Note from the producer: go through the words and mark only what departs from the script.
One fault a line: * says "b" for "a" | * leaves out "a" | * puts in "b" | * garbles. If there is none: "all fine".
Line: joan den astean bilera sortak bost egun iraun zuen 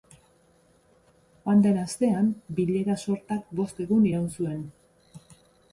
all fine